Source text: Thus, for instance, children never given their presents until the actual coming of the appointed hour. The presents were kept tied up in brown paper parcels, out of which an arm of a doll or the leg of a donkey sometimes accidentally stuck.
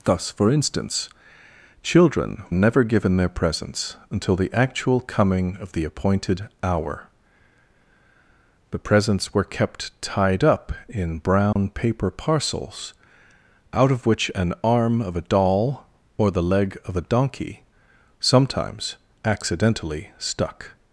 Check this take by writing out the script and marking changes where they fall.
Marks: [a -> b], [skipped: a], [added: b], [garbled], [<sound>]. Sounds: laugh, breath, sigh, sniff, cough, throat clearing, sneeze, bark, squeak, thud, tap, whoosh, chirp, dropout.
Thus, for instance, children never given their presents until the actual coming of the appointed hour. The presents were kept tied up in brown [dropout] paper parcels, out of which an arm of a doll or the leg of a donkey sometimes accidentally stuck.